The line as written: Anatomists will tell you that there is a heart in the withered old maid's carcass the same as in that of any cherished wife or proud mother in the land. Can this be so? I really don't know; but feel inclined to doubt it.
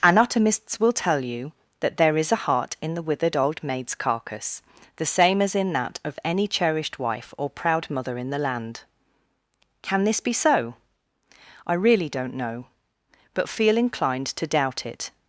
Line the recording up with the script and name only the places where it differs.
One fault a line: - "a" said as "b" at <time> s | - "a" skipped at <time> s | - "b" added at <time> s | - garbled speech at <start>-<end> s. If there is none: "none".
none